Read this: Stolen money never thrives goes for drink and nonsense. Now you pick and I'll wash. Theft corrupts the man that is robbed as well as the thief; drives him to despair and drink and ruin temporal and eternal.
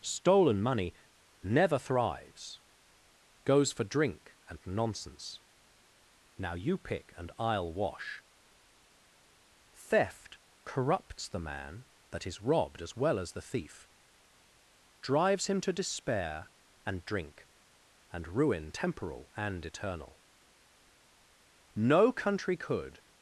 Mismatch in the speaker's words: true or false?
true